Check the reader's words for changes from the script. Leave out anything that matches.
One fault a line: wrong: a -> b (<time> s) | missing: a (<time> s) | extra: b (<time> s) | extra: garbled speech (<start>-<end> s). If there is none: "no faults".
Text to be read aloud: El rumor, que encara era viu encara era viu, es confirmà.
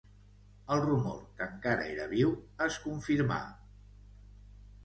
missing: encara era viu (2.3 s)